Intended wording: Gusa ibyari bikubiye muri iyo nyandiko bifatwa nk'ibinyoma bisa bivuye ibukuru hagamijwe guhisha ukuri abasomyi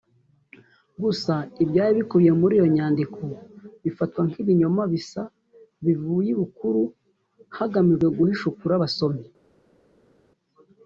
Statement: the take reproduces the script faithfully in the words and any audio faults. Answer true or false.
true